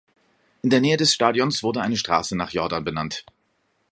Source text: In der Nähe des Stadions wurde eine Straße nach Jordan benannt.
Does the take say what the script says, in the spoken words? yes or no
yes